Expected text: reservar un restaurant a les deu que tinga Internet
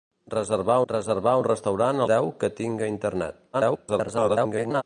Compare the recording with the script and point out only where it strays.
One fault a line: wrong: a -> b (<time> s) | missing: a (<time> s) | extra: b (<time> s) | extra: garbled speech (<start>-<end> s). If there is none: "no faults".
extra: reservar (0.9 s)
missing: les (2.1 s)
extra: garbled speech (3.5-4.8 s)